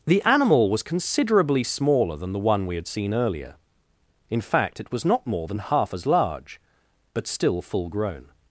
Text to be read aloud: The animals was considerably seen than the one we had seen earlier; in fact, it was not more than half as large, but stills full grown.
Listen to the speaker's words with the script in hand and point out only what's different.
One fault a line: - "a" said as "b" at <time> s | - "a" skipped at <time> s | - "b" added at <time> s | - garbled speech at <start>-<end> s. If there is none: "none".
- "animals" said as "animal" at 0.2 s
- "seen" said as "smaller" at 1.6 s
- "stills" said as "still" at 7.3 s